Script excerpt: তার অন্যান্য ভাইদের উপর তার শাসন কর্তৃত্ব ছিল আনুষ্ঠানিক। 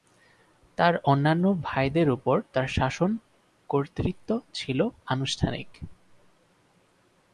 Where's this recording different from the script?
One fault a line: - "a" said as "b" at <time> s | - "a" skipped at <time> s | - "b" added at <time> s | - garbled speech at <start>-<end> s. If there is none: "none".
none